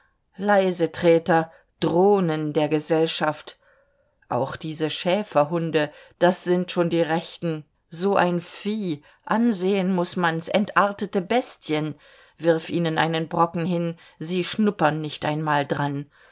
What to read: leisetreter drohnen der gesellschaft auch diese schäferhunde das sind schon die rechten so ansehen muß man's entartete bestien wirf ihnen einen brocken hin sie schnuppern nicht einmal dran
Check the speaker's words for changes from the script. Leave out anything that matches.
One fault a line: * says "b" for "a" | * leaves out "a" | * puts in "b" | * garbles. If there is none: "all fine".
* puts in "ein vieh"